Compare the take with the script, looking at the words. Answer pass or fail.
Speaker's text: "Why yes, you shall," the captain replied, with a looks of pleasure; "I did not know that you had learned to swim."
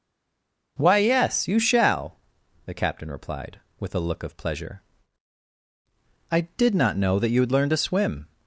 fail